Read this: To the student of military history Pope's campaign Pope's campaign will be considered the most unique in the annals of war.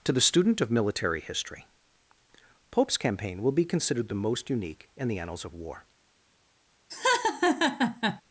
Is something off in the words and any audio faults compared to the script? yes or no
yes